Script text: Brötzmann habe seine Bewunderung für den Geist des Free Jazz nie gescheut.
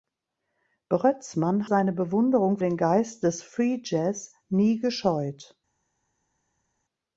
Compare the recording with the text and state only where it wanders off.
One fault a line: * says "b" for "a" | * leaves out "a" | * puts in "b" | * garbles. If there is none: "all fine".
* leaves out "habe"
* leaves out "für"